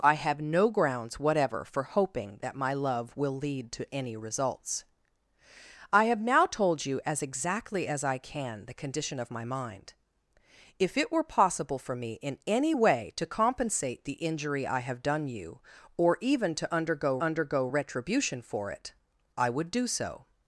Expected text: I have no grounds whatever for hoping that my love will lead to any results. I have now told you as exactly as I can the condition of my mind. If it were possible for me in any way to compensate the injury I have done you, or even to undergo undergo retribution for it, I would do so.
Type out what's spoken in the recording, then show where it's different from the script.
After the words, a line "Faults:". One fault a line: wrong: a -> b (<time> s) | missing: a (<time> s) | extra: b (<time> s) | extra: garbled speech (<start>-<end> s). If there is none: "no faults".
I have no grounds whatever for hoping that my love will lead to any results. I have now told you as exactly as I can the condition of my mind. If it were possible for me in any way to compensate the injury I have done you, or even to undergo undergo retribution for it, I would do so.
Faults:
no faults